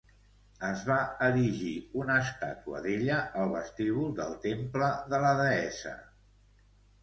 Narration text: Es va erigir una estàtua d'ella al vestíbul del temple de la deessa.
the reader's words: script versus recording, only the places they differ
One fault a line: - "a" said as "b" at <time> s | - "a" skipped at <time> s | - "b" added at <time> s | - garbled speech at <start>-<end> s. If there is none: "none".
none